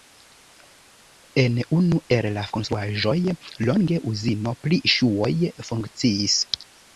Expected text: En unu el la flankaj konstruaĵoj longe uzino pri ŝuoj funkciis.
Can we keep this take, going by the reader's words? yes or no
no